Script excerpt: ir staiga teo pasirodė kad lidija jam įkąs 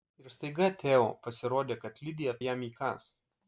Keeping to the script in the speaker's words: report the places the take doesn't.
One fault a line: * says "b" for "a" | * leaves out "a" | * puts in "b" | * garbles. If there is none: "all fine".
all fine